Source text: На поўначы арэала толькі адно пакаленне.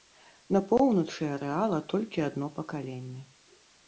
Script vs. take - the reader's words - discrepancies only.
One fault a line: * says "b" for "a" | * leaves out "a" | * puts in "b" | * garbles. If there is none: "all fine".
all fine